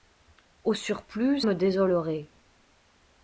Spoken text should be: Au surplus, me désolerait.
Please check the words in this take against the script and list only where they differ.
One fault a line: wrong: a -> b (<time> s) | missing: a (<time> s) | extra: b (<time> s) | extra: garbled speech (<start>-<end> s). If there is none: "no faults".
no faults